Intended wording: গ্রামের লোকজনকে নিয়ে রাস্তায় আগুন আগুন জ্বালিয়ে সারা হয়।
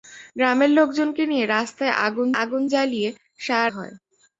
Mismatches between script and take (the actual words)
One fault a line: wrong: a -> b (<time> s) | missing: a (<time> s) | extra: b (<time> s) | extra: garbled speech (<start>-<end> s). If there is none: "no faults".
no faults